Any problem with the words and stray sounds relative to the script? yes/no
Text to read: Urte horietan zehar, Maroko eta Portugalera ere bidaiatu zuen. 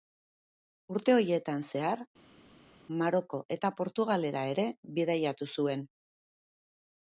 no